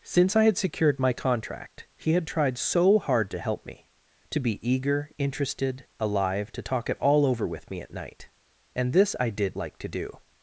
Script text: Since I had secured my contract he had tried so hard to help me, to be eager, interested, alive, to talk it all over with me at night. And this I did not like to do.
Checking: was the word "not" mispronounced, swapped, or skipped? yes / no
yes